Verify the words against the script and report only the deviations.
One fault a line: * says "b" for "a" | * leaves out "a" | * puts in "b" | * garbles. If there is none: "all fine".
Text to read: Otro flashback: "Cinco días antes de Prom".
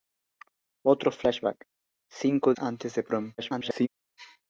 * leaves out "días"
* garbles